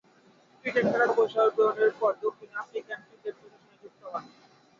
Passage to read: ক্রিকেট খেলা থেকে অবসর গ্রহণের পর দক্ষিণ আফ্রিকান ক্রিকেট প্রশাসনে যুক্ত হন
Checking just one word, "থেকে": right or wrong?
wrong